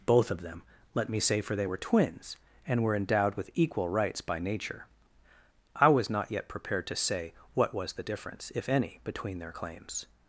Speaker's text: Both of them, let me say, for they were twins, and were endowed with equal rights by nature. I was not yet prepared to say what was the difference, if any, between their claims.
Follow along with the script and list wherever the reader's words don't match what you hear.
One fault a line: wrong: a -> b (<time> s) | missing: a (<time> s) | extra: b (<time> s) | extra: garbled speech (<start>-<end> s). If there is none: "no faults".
no faults